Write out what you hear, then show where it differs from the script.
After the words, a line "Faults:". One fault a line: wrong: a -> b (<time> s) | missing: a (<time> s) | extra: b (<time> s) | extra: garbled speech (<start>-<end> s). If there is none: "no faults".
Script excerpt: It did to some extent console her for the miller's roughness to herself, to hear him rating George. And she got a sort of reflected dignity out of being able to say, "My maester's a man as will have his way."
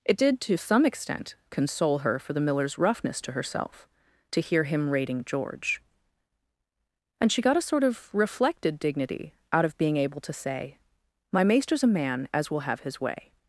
It did to some extent console her for the miller's roughness to herself, to hear him rating George. And she got a sort of reflected dignity out of being able to say, "My maester's a man as will have his way."
Faults:
no faults